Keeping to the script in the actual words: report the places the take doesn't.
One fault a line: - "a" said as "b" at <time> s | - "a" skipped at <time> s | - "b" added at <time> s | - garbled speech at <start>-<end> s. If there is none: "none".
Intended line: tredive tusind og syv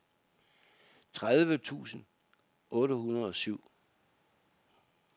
- "otte hundrede" added at 2.7 s